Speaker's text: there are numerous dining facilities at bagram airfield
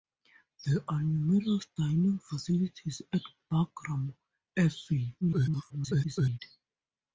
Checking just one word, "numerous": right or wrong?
right